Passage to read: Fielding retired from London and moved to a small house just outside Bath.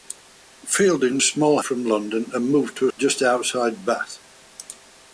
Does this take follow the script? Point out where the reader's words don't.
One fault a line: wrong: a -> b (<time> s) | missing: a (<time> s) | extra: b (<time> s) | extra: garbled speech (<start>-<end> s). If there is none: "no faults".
wrong: retired -> small (1.2 s)
missing: small house (2.9 s)